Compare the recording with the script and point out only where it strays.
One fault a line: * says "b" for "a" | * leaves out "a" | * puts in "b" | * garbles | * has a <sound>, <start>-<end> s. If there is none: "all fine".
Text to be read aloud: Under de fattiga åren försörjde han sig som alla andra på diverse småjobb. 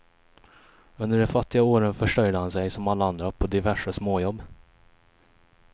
all fine